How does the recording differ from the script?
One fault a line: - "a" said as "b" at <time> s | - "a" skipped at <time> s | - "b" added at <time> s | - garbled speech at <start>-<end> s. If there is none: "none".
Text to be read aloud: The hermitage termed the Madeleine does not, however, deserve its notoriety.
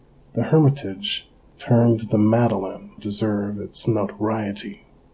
- "does not however" skipped at 2.9 s